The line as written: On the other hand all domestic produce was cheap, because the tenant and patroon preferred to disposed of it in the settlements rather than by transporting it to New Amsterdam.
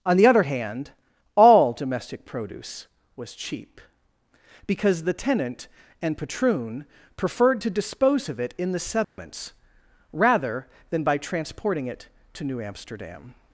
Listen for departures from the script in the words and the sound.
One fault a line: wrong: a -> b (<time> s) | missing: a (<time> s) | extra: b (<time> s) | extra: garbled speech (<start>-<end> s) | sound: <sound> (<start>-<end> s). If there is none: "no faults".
wrong: disposed -> dispose (7.7 s)
sound: dropout (9.0-9.2 s)